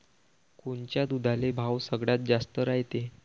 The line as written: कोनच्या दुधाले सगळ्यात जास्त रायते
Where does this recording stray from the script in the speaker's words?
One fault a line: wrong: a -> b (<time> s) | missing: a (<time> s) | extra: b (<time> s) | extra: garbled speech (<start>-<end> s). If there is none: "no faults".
extra: भाव (1.5 s)